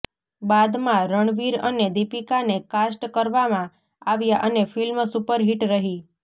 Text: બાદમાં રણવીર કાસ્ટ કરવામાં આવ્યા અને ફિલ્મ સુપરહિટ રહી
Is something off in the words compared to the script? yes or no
yes